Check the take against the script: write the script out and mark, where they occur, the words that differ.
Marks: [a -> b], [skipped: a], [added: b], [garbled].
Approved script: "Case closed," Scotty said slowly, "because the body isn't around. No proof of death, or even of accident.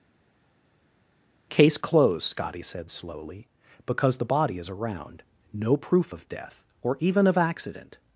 "Case closed," Scotty said slowly, "because the body [isn't -> is] around. No proof of death, or even of accident.